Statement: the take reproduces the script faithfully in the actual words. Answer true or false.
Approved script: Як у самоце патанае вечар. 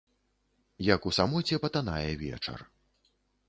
true